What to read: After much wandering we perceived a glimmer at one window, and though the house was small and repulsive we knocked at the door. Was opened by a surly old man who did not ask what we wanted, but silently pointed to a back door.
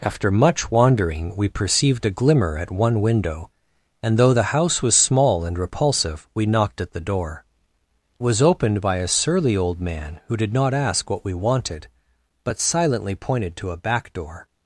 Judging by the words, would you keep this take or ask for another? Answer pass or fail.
pass